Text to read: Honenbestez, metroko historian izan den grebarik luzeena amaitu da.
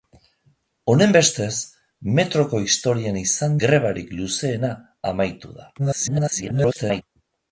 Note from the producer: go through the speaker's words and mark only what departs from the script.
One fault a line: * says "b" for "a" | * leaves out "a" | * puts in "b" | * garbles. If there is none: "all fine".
* leaves out "den"
* garbles